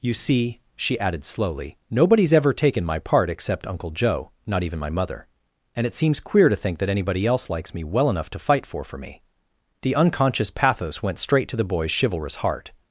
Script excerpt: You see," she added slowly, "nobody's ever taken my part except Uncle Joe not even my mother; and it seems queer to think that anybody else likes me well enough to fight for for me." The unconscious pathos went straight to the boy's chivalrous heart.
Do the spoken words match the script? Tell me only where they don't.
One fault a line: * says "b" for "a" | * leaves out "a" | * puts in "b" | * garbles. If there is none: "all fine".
all fine